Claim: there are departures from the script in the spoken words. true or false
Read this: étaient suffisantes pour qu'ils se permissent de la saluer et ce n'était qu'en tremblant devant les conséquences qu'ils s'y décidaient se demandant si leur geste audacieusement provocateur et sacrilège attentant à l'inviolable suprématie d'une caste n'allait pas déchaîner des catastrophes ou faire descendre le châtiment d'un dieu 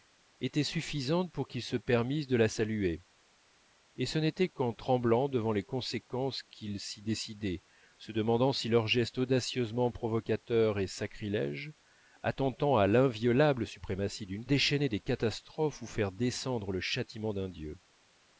true